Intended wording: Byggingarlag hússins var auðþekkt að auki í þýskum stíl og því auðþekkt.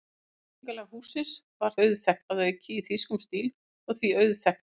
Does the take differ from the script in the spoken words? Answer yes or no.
no